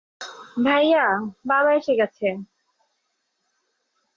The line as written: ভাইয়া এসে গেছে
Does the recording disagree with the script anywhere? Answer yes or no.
yes